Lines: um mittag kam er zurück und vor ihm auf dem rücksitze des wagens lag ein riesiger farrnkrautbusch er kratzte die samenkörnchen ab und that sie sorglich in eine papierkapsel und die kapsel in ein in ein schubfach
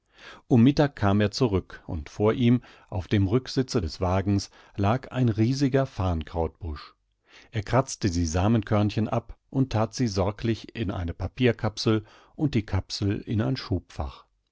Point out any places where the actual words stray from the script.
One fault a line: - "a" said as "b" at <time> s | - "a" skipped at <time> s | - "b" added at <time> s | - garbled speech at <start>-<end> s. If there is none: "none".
- "in ein" skipped at 13.6 s